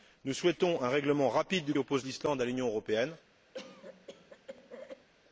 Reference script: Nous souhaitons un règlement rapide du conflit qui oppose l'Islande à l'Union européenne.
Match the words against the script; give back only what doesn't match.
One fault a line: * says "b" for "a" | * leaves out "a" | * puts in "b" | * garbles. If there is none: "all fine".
* leaves out "conflit qui"